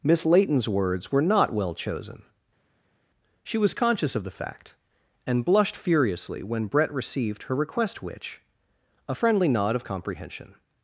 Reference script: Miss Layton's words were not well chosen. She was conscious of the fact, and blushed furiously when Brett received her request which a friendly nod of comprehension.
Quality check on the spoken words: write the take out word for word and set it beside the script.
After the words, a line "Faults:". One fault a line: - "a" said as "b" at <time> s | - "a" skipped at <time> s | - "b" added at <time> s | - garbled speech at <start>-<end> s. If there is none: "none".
Miss Layton's words were not well chosen. She was conscious of the fact, and blushed furiously when Brett received her request which a friendly nod of comprehension.
Faults:
none